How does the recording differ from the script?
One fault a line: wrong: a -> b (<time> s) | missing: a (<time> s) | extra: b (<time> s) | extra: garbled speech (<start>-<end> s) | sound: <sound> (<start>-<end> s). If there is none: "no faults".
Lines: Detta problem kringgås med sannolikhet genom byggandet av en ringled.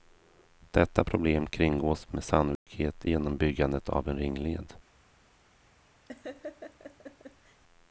sound: dropout (2.6-2.7 s)
sound: laugh (6.1-7.6 s)